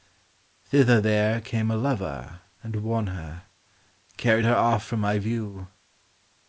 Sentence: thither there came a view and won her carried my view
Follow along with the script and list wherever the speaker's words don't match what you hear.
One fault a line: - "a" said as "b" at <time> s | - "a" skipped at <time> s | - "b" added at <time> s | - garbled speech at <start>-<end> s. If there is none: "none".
- "view" said as "lover" at 1.8 s
- "her off from" added at 4.5 s